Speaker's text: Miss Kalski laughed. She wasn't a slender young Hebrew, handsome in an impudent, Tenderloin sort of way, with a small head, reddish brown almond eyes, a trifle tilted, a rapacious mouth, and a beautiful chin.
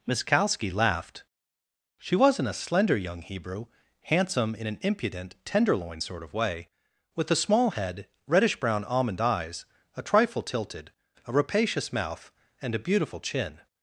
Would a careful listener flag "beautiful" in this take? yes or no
no